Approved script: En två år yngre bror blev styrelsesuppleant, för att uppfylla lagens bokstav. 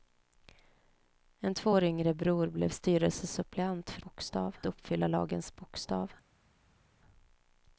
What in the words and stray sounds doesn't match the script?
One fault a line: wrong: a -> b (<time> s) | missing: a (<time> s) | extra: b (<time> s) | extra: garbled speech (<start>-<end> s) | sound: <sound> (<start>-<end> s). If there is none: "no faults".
wrong: att -> bokstav (4.0 s)